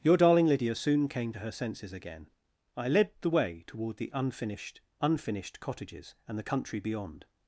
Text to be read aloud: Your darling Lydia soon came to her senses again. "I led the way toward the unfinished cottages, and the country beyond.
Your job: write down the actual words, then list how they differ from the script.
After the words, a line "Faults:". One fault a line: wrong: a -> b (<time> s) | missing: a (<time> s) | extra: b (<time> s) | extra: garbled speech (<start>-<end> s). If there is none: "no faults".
Your darling Lydia soon came to her senses again. "I led the way toward the unfinished unfinished cottages, and the country beyond.
Faults:
extra: unfinished (5.0 s)